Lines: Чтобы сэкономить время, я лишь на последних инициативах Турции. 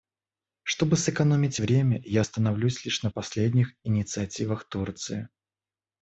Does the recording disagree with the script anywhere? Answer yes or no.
yes